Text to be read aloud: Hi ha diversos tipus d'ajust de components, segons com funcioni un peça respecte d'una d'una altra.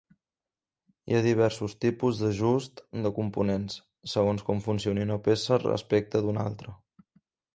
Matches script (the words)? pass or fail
fail